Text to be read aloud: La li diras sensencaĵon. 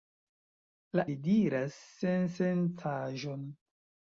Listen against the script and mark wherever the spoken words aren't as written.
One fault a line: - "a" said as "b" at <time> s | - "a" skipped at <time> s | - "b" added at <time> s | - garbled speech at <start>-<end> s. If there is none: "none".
none